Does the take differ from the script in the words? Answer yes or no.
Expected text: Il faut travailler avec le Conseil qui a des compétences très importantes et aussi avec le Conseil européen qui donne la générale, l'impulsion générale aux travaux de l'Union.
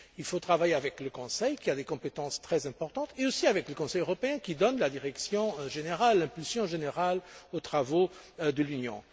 yes